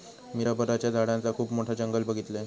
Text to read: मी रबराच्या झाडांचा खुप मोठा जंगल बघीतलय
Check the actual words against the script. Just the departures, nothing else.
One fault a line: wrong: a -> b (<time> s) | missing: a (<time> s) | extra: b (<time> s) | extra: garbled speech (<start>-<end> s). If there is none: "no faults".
no faults